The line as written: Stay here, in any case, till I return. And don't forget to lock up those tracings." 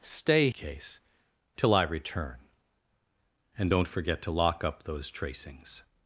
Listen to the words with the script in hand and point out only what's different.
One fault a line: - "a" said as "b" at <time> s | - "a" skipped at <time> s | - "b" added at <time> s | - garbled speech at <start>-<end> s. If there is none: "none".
- "here in any" skipped at 0.5 s